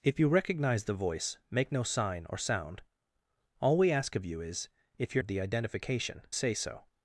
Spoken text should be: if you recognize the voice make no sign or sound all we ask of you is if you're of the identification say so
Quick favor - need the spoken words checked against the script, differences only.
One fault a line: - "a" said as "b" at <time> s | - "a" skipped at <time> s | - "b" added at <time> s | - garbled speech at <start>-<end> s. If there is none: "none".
none